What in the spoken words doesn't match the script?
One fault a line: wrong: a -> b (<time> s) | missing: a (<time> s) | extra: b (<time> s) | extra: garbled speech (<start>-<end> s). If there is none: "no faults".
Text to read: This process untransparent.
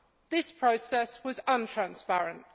extra: was (1.2 s)